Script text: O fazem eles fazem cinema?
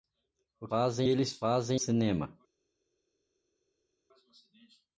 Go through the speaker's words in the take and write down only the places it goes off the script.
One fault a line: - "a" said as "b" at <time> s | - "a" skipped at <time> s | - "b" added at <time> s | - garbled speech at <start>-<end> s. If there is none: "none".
none